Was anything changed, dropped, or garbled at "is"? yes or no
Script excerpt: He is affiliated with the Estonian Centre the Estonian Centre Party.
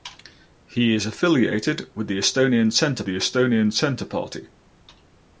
no